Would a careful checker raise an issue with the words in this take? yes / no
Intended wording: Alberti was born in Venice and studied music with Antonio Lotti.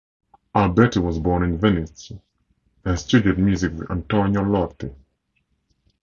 no